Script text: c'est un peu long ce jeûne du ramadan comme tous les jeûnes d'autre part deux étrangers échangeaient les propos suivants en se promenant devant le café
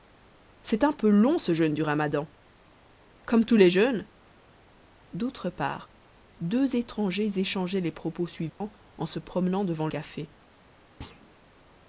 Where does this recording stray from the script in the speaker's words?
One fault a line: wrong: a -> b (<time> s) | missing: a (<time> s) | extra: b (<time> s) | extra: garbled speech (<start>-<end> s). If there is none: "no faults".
missing: le (9.9 s)